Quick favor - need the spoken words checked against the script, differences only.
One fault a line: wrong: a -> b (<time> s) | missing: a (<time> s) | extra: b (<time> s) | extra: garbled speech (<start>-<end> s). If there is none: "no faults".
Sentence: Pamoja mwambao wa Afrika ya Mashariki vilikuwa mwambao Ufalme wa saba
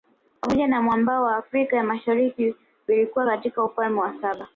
extra: na (0.7 s)
wrong: mwambao -> katika (3.3 s)